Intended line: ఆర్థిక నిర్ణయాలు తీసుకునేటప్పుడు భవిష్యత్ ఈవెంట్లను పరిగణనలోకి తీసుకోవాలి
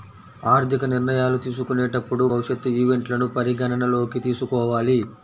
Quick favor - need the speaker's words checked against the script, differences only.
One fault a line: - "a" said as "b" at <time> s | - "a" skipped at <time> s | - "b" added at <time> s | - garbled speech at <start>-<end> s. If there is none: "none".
none